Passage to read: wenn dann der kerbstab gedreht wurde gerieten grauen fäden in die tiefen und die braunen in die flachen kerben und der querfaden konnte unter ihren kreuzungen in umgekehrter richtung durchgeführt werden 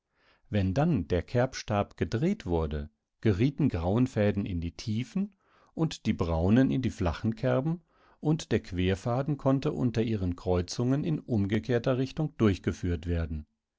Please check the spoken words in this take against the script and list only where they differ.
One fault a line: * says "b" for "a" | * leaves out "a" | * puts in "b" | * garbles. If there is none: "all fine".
all fine